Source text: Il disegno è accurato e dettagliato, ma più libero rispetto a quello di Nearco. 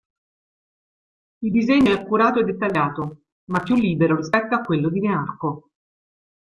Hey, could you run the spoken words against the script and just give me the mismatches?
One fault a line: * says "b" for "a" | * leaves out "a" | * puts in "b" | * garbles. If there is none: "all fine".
all fine